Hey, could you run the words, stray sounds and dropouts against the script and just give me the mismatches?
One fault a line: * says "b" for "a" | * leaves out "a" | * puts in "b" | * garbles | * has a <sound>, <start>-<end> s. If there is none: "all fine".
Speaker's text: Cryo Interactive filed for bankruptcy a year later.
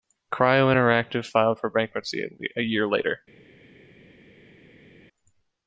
all fine